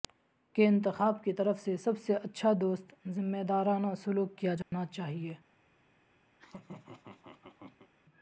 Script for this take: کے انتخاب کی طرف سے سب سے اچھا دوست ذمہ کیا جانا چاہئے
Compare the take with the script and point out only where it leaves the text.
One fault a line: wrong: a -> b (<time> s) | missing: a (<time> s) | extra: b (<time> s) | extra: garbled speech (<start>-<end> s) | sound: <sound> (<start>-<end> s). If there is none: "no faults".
extra: دارانہ سلوک (3.5 s)
sound: dropout (4.6-4.7 s)
sound: laugh (6.3-7.9 s)